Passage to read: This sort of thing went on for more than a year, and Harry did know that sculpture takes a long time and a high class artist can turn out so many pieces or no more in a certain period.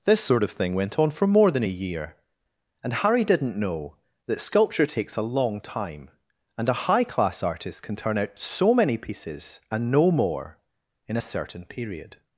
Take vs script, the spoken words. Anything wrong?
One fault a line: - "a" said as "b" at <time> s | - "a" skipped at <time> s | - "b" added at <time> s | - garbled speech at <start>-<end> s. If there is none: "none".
- "did" said as "didn't" at 3.2 s
- "or" said as "and" at 9.7 s